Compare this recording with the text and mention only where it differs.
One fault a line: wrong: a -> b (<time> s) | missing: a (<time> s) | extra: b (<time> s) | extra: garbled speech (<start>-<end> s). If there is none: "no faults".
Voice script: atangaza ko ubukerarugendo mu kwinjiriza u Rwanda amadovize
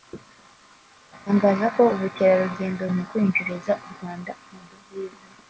no faults